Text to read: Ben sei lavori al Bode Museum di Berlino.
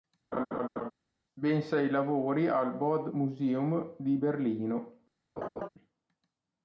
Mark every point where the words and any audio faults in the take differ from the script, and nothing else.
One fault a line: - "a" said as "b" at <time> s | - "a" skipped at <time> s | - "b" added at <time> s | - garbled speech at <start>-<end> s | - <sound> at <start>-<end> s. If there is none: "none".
- laugh at 0.3-0.9 s
- laugh at 5.4-5.7 s